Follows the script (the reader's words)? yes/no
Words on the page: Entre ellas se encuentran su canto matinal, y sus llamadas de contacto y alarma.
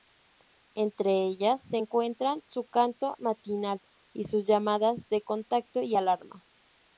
yes